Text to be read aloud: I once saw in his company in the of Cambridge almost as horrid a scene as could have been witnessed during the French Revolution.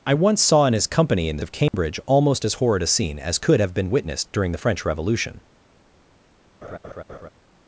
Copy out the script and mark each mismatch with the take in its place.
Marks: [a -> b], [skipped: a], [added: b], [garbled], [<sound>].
I once saw in his company in the of Cambridge [dropout] almost as horrid a scene as could have been witnessed during the French Revolution. [laugh]